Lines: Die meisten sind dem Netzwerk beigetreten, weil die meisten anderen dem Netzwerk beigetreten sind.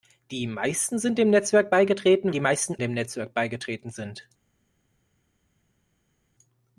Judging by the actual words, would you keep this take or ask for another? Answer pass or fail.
fail